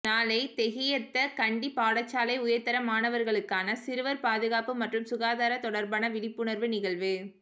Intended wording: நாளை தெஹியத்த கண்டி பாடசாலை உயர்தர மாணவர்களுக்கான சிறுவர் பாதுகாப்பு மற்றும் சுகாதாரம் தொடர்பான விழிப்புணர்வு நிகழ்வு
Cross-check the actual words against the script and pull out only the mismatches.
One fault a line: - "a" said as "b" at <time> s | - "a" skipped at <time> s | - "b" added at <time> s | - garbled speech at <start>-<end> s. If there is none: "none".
none